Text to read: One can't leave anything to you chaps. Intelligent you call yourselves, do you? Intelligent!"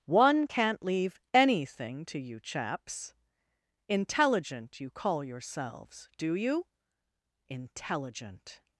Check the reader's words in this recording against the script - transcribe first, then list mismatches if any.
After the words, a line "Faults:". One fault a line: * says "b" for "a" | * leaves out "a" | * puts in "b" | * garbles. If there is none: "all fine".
One can't leave anything to you chaps. Intelligent you call yourselves, do you? Intelligent!"
Faults:
all fine